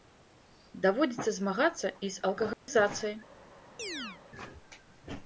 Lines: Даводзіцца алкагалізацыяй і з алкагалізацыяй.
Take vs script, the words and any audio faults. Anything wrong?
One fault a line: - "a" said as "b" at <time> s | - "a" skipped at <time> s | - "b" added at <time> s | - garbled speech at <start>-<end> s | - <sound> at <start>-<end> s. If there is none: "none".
- "алкагалізацыяй" said as "змагацца" at 1.4 s
- dropout at 2.5-2.7 s
- chirp at 3.8-4.2 s